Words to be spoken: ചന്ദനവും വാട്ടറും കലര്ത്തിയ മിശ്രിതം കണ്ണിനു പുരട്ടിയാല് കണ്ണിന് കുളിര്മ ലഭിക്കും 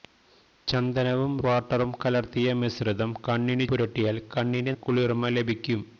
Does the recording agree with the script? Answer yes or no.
yes